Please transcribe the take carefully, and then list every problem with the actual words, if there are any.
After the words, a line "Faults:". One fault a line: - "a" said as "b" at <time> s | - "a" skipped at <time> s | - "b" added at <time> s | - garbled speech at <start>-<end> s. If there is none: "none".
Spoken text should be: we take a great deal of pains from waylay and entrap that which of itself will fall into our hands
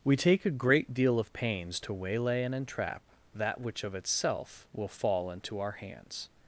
we take a great deal of pains to waylay and entrap that which of itself will fall into our hands
Faults:
- "from" said as "to" at 1.8 s